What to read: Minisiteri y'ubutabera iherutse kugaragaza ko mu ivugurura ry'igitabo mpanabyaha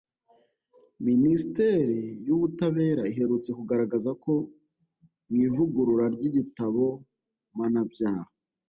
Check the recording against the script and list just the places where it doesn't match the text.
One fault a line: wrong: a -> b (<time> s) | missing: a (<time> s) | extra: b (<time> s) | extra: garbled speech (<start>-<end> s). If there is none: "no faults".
no faults